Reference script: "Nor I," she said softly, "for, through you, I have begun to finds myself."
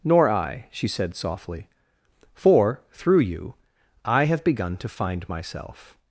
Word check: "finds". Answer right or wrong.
wrong